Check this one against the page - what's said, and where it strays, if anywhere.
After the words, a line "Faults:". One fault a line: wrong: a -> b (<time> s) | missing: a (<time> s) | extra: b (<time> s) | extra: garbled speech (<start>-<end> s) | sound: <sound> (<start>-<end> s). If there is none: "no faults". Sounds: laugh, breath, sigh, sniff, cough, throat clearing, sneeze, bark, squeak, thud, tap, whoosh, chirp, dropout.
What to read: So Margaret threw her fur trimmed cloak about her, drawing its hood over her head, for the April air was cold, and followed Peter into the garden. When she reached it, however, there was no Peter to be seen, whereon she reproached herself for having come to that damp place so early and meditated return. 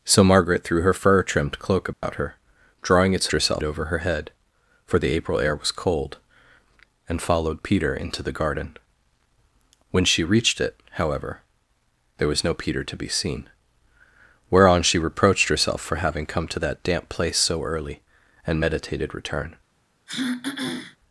So Margaret threw her fur trimmed cloak about her, drawing its herself over her head, for the April air was cold, and followed Peter into the garden. When she reached it, however, there was no Peter to be seen, whereon she reproached herself for having come to that damp place so early and meditated return.
Faults:
sound: dropout (1.9-2.0 s)
wrong: hood -> herself (3.3 s)
sound: throat clearing (20.1-21.0 s)